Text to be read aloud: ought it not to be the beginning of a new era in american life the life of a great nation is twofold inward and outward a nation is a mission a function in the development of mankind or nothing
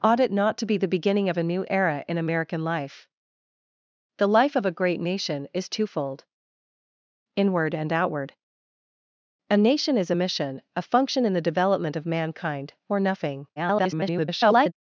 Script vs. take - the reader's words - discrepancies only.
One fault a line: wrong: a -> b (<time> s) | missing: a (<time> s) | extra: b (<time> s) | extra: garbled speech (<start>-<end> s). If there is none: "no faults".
extra: garbled speech (13.6-14.7 s)